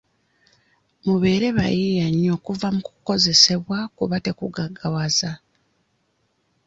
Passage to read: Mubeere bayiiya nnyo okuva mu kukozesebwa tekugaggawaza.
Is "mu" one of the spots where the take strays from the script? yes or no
no